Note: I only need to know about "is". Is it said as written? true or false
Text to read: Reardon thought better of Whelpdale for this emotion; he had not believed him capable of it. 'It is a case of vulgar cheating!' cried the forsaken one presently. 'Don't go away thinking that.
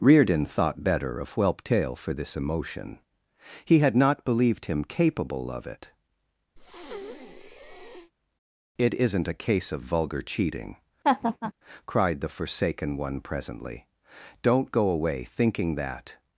false